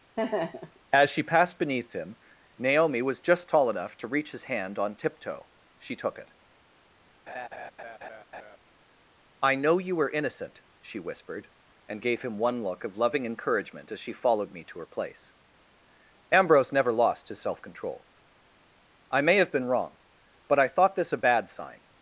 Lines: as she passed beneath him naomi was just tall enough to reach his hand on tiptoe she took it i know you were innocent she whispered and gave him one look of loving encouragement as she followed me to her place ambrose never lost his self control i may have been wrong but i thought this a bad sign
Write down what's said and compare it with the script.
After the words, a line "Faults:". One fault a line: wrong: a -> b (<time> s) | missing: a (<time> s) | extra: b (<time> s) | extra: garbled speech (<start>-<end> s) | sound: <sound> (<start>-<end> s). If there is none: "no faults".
as she passed beneath him naomi was just tall enough to reach his hand on tiptoe she took it i know you were innocent she whispered and gave him one look of loving encouragement as she followed me to her place ambrose never lost his self control i may have been wrong but i thought this a bad sign
Faults:
sound: laugh (0.2-0.8 s)
sound: laugh (7.3-8.6 s)